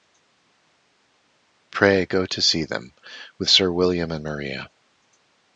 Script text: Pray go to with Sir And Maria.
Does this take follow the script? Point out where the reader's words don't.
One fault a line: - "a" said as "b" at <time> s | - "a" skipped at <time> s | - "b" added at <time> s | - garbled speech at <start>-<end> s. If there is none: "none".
- "see them" added at 2.4 s
- "William" added at 3.7 s